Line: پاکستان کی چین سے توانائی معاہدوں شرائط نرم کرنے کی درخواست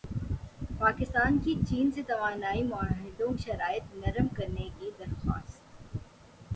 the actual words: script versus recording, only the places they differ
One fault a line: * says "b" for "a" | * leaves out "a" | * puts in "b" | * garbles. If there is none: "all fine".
all fine